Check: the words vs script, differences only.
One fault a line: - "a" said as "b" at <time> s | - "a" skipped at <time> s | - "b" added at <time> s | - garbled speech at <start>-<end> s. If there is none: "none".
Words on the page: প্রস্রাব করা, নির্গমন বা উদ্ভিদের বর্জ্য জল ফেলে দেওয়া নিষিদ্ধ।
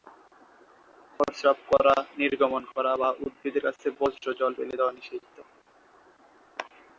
- "করা" added at 2.7 s
- "কাছে" added at 3.6 s